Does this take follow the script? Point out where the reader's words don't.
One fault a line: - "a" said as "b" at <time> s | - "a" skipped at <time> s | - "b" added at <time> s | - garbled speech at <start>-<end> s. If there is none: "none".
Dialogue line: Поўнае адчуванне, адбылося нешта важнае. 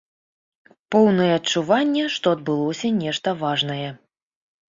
- "што" added at 2.1 s